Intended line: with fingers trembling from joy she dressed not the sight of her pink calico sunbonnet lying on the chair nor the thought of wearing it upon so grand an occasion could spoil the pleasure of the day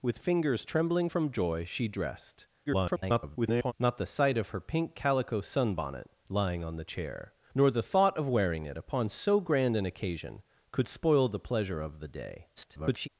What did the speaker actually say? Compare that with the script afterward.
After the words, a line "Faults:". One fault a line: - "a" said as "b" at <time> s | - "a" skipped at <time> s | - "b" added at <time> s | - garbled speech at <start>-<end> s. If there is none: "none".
with fingers trembling from joy she dressed [garbled] not the sight of her pink calico sunbonnet lying on the chair nor the thought of wearing it upon so grand an occasion could spoil the pleasure of the day [garbled]
Faults:
- garbled speech at 2.7-3.7 s
- garbled speech at 12.6-13.1 s